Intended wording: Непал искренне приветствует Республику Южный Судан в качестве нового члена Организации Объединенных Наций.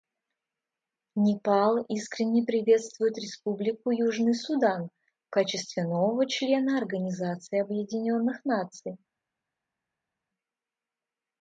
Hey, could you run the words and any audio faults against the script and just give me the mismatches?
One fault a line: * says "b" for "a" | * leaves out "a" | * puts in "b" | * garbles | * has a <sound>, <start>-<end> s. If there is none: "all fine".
all fine